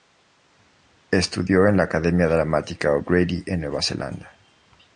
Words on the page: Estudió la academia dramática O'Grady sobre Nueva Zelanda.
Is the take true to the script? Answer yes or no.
no